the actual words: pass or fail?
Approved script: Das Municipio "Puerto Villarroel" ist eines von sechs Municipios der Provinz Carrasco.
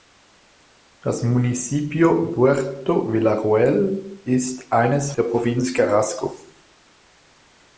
fail